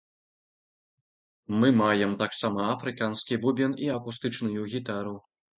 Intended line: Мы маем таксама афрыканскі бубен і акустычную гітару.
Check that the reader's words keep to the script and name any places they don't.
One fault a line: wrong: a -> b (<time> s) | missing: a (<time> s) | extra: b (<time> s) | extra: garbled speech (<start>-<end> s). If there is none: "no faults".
no faults